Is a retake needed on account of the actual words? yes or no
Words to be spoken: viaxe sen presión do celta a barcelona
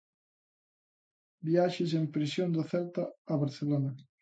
no